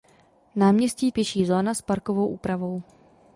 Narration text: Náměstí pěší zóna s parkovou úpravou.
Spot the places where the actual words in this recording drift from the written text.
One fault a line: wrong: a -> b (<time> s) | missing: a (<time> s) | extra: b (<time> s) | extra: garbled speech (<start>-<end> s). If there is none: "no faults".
no faults